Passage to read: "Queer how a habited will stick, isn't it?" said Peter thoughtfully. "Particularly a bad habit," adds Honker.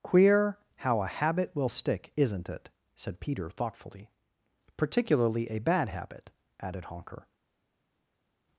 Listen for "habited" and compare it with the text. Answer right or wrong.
wrong